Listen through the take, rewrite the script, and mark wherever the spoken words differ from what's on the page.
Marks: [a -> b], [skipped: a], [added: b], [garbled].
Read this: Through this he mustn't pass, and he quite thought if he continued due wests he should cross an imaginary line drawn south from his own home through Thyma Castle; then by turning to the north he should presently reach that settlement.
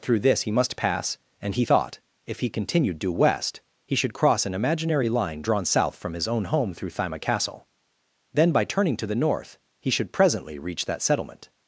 Through this he [mustn't -> must] pass, and he [skipped: quite] thought if he continued due [wests -> west] he should cross an imaginary line drawn south from his own home through Thyma Castle; then by turning to the north he should presently reach that settlement.